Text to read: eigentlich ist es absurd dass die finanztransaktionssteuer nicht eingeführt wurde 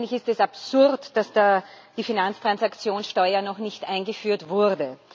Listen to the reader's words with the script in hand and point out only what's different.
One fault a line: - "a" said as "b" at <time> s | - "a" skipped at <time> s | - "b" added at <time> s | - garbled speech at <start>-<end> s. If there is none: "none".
- "noch" added at 3.4 s